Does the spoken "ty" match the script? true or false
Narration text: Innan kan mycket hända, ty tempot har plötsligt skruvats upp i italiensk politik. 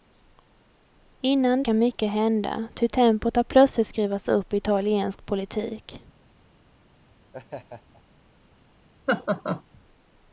true